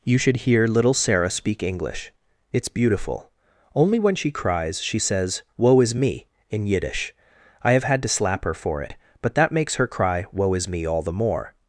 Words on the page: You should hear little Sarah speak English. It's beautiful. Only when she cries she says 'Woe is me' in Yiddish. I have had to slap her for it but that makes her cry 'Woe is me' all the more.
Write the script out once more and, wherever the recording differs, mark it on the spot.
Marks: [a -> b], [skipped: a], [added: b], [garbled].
You should hear little Sarah speak English. It's beautiful. Only when she cries she says 'Woe is me' in Yiddish. I have had to slap her for it but that makes her cry 'Woe is me' all the more.